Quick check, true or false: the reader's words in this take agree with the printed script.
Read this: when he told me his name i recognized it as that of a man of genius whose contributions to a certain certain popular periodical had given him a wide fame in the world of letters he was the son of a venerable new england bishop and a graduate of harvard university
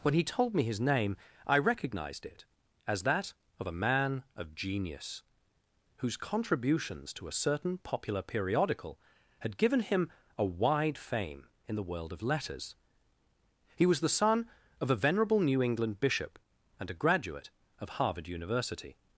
false